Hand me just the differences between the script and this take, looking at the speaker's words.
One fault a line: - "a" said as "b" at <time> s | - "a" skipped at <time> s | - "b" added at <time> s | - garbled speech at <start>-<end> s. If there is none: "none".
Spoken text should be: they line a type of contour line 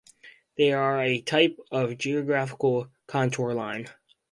- "line" said as "are" at 0.7 s
- "geographical" added at 2.0 s